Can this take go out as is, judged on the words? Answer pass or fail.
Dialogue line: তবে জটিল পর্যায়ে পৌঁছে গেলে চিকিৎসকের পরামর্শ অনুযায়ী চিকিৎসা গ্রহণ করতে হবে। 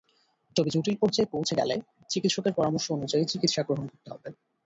pass